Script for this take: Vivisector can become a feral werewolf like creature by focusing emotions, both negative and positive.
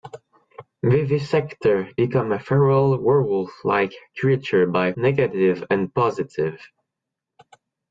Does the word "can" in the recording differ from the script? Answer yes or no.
yes